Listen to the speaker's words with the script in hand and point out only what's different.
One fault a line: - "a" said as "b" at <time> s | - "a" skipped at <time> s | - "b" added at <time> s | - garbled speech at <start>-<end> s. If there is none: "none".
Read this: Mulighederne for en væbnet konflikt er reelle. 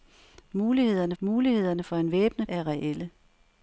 - "mulighederne" added at 1.2 s
- "konflikt" skipped at 2.5 s